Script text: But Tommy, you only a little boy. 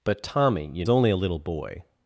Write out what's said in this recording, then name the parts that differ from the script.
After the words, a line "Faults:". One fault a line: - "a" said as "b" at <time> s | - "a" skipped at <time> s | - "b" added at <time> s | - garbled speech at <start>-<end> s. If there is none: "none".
But Tommy, you only a little boy.
Faults:
none